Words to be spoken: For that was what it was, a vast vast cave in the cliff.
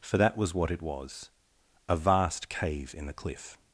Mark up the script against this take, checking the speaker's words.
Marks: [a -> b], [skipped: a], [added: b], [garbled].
For that was what it was, a vast [skipped: vast] cave in the cliff.